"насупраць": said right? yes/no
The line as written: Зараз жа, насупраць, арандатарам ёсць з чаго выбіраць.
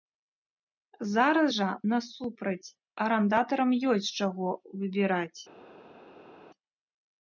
yes